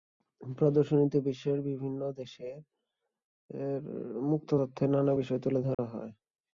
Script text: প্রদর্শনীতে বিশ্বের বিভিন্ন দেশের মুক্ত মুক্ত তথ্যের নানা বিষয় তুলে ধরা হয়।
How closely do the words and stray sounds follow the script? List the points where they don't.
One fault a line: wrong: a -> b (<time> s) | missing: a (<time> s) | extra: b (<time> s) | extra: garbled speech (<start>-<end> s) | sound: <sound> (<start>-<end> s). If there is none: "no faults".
missing: মুক্ত (4.5 s)
sound: dropout (5.7-5.8 s)